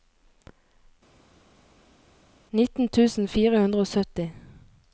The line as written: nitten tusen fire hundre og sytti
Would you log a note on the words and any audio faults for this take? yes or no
no